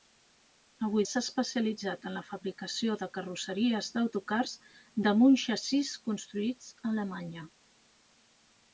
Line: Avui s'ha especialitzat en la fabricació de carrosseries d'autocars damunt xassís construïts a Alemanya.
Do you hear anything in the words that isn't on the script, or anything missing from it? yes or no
no